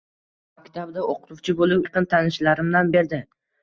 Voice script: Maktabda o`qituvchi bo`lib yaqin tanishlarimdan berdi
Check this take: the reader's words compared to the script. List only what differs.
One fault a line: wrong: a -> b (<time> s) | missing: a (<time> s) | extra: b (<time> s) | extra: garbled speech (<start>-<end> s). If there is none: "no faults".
no faults